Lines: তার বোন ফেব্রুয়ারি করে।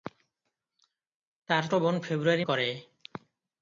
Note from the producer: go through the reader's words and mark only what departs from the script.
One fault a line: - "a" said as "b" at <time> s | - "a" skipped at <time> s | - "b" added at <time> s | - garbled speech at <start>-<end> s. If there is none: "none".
none